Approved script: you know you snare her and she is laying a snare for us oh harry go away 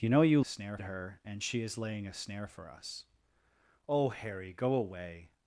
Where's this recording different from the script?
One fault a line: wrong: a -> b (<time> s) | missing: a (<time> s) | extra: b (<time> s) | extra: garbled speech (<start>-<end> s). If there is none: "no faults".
no faults